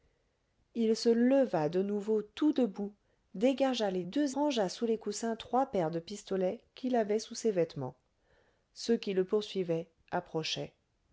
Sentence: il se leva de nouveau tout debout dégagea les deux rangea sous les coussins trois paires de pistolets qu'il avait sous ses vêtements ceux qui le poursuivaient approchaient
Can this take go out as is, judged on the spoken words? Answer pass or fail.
pass